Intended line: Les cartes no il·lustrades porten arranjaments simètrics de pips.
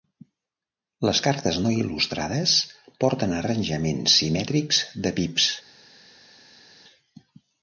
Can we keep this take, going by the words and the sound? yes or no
yes